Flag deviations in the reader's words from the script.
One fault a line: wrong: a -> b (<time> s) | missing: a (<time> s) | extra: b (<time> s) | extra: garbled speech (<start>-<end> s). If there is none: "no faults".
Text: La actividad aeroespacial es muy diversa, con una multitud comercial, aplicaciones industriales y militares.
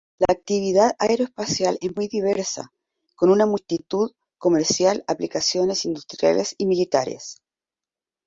no faults